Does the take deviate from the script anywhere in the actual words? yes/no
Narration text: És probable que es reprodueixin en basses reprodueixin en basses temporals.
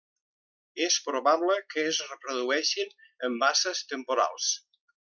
yes